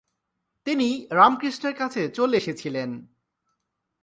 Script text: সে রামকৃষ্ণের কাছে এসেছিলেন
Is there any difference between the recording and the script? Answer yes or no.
yes